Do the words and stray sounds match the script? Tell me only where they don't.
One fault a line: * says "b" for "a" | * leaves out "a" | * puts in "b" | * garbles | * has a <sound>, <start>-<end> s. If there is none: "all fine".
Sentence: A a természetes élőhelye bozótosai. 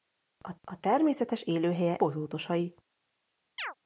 * has a chirp, 3.6-3.7 s